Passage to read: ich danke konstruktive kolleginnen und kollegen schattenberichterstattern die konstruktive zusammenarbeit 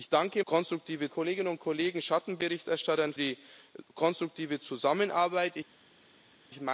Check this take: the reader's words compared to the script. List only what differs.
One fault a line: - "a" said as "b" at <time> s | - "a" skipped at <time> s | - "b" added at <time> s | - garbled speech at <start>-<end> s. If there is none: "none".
none